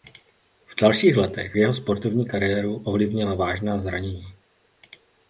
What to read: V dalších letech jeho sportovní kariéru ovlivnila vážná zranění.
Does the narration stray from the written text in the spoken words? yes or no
no